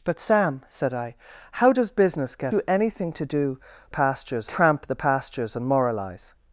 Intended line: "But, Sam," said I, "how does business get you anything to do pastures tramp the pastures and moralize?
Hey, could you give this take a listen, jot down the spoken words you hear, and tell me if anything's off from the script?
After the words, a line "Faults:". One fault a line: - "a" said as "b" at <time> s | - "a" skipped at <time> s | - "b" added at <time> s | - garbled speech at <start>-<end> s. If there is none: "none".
"But, Sam," said I, "how does business get you anything to do pastures tramp the pastures and moralize?
Faults:
none